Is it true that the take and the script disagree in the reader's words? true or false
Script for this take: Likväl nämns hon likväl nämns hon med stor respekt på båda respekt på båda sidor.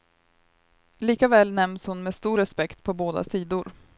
true